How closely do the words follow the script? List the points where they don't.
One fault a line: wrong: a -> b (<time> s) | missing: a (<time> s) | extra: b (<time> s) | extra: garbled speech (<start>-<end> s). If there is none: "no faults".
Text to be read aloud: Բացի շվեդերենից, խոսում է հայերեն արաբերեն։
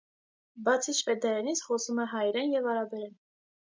extra: և (2.6 s)